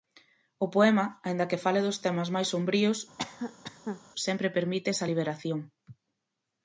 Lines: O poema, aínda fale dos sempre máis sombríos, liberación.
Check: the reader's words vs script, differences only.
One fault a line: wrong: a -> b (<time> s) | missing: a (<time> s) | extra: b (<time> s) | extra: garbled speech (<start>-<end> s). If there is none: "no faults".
extra: que (1.5 s)
wrong: sempre -> temas (2.0 s)
extra: sempre permite esa (4.2 s)